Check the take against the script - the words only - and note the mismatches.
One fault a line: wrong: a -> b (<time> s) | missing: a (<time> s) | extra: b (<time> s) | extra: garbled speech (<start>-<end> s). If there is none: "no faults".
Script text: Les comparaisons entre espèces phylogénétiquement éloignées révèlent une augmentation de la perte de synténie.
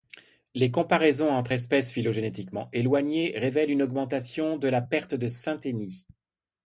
no faults